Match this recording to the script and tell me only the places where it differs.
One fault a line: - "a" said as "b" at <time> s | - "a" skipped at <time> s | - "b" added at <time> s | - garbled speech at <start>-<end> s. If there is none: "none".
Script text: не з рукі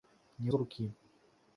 none